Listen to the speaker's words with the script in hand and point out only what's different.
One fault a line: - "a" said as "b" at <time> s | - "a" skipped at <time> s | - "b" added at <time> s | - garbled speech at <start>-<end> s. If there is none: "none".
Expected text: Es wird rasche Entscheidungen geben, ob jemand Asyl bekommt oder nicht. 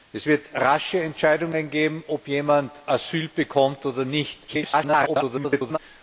- garbled speech at 4.5-5.8 s